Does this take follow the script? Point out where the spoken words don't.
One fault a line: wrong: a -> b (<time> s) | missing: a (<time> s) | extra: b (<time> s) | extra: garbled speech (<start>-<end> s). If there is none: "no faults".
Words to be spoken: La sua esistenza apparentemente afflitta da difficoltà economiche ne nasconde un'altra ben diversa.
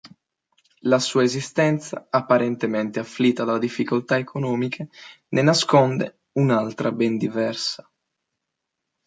no faults